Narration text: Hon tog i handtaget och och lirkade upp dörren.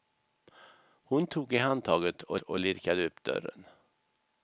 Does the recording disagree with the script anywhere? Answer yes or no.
no